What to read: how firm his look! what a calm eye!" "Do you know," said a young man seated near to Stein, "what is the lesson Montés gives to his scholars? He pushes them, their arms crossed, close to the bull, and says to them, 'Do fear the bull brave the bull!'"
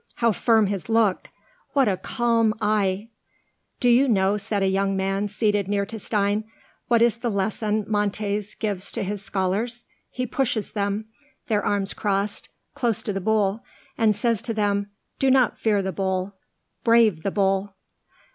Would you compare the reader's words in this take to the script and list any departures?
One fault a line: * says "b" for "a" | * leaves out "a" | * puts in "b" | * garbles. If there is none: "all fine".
* puts in "not"